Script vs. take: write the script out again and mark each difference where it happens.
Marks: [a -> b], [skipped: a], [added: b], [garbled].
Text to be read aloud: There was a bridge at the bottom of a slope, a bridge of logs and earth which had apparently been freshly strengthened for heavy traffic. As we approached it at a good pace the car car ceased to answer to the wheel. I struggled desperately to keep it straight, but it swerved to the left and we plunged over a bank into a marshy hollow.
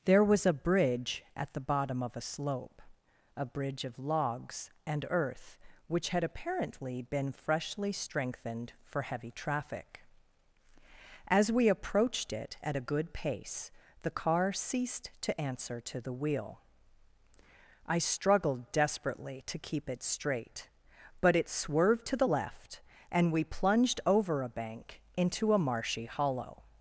There was a bridge at the bottom of a slope, a bridge of logs and earth which had apparently been freshly strengthened for heavy traffic. As we approached it at a good pace the car [skipped: car] ceased to answer to the wheel. I struggled desperately to keep it straight, but it swerved to the left and we plunged over a bank into a marshy hollow.